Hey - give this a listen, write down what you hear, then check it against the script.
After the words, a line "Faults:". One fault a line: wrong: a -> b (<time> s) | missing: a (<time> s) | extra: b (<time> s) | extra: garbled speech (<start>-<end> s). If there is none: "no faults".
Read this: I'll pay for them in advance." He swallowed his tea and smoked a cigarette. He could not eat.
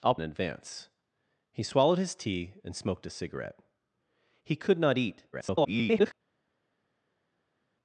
I'll in advance." He swallowed his tea and smoked a cigarette. He could not eat. [garbled]
Faults:
missing: pay for them (0.1 s)
extra: garbled speech (5.3-6.1 s)